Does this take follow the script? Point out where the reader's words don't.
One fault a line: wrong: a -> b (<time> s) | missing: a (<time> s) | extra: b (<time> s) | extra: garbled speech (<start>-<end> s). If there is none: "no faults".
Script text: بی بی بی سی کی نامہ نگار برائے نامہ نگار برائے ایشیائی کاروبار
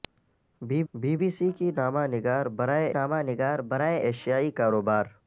no faults